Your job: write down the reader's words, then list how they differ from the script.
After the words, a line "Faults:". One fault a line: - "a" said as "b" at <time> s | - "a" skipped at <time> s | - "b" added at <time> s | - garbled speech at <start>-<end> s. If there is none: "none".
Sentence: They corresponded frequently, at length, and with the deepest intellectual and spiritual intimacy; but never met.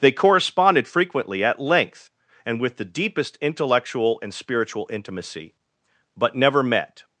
They corresponded frequently, at length, and with the deepest intellectual and spiritual intimacy; but never met.
Faults:
none